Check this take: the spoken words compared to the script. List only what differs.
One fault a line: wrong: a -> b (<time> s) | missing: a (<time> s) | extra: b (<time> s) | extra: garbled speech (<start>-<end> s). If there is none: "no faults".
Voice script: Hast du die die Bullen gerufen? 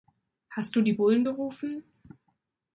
missing: die (0.9 s)